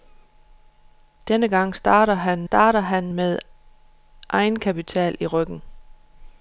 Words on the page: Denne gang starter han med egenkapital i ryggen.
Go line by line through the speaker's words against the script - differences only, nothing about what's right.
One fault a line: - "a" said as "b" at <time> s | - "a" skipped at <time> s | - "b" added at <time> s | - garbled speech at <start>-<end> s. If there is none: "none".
- "starter han" added at 2.4 s